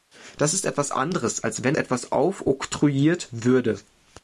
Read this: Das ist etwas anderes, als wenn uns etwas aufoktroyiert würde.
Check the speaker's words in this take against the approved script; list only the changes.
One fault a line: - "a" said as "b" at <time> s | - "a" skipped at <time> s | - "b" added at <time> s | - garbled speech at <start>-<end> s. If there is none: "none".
- "uns" skipped at 1.8 s